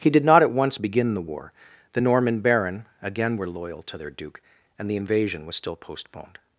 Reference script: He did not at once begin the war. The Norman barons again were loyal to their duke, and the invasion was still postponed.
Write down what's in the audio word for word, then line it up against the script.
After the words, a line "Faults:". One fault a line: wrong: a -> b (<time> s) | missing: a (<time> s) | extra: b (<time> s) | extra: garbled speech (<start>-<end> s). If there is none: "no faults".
He did not at once begin the war. The Norman baron again were loyal to their duke, and the invasion was still postponed.
Faults:
wrong: barons -> baron (2.4 s)